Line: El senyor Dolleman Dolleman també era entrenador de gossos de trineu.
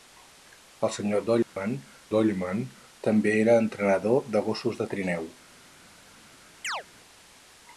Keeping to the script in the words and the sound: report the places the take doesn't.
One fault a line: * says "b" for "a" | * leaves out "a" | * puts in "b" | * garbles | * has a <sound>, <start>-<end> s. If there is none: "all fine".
* has a dropout, 1.4-1.6 s
* has a chirp, 6.6-6.8 s